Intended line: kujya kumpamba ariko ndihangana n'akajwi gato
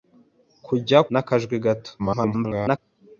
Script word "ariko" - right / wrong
wrong